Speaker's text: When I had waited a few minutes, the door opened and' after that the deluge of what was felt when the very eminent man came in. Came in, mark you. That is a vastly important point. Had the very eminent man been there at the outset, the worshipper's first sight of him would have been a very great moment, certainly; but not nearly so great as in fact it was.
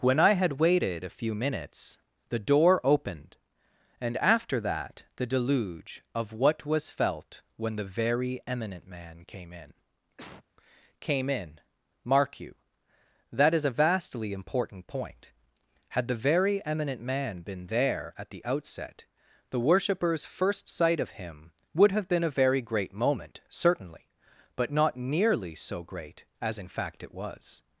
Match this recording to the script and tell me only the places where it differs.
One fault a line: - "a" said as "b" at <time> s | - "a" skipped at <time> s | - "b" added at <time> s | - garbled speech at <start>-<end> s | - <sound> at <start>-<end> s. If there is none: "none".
- cough at 10.2-10.4 s